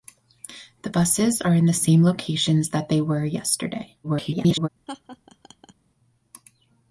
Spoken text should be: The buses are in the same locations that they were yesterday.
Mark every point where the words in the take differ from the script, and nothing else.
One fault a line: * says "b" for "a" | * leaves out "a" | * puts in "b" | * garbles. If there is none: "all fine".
* garbles